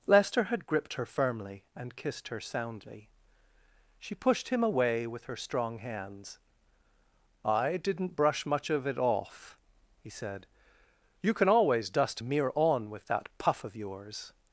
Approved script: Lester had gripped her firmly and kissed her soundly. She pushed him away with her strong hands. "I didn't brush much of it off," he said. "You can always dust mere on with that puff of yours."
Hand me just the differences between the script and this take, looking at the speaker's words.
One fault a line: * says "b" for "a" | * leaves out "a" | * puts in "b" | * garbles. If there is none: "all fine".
all fine